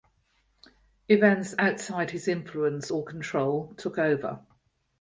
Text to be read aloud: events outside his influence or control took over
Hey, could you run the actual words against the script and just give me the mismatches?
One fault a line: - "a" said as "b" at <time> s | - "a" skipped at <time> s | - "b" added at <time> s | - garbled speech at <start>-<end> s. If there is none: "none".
none